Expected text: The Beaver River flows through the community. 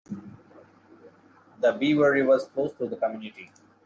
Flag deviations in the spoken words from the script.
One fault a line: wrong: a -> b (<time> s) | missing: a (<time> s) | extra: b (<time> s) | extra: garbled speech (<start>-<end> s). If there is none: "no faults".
no faults